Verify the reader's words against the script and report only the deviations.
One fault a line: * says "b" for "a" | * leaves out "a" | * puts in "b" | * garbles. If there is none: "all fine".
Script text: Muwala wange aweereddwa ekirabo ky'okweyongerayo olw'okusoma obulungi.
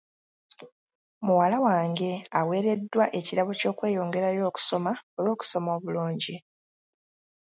* puts in "okusoma"